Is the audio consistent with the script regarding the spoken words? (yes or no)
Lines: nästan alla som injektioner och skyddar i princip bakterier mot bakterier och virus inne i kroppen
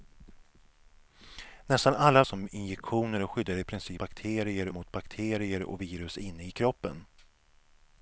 yes